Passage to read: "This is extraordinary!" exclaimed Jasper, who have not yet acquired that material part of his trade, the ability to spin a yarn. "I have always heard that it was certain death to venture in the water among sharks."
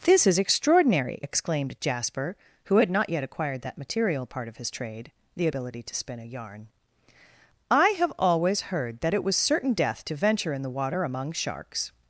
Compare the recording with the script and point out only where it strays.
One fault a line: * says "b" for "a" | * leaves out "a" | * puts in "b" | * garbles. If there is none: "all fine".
* says "had" for "have"